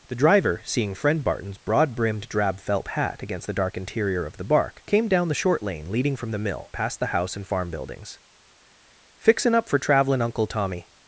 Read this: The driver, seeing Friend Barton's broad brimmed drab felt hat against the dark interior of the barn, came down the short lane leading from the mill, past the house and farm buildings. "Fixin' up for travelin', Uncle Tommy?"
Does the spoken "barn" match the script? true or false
false